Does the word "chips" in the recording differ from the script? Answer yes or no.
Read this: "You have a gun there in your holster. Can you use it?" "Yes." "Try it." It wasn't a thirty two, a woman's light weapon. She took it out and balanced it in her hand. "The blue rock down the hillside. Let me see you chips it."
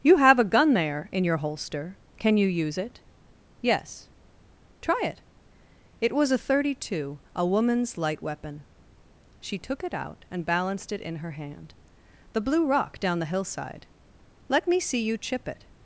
yes